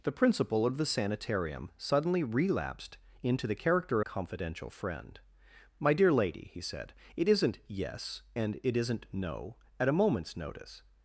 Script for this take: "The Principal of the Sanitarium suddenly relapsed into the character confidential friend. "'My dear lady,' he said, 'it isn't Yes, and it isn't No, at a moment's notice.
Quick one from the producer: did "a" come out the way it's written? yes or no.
yes